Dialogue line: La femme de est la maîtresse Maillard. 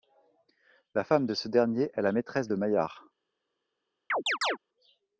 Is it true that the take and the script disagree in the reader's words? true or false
true